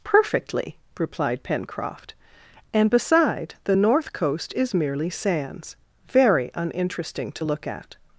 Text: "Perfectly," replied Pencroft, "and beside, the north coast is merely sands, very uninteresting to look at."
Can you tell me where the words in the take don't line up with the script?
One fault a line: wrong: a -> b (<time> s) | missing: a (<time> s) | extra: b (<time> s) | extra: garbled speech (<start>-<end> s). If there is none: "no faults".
no faults